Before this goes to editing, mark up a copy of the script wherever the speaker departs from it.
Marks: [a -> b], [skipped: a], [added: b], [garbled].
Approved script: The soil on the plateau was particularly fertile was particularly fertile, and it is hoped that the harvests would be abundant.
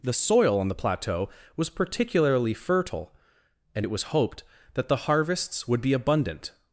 The soil on the plateau was particularly fertile [skipped: was particularly fertile,] and it [is -> was] hoped that the harvests would be abundant.